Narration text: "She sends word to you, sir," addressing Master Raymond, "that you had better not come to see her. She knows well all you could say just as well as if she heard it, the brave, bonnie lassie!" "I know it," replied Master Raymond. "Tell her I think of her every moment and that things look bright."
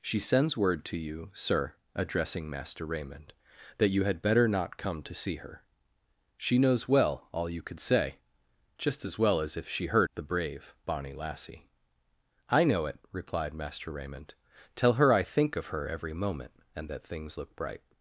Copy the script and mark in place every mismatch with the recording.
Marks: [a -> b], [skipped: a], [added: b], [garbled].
"She sends word to you, sir," addressing Master Raymond, "that you had better not come to see her. She knows well all you could say just as well as if she heard [skipped: it,] the brave, bonnie lassie!" "I know it," replied Master Raymond. "Tell her I think of her every moment and that things look bright."